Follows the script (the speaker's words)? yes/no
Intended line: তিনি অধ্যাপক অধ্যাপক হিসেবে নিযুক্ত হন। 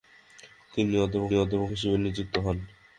yes